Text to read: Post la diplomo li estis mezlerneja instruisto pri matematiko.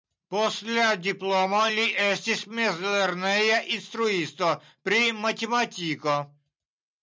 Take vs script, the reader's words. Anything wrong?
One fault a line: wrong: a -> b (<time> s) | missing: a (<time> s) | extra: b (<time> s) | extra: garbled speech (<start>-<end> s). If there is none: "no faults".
no faults